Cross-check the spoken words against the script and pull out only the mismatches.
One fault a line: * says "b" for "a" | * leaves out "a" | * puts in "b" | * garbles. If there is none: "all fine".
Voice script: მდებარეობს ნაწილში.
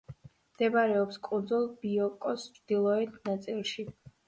* puts in "კუნძულ ბიოკოს ჩრდილოეთ"